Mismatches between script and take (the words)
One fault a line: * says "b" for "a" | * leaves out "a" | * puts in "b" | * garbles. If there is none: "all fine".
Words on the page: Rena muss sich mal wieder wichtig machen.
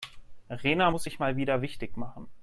all fine